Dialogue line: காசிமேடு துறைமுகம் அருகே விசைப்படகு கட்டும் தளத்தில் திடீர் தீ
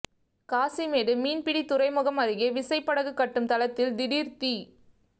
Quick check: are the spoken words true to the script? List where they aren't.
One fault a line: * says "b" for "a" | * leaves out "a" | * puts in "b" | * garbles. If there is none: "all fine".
* puts in "மீன்பிடி"